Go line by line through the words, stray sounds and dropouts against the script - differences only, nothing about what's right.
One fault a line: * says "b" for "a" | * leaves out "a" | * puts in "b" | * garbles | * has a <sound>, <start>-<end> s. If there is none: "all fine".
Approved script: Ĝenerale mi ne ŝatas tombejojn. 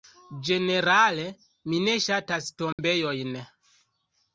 * has a dropout, 2.7-2.8 s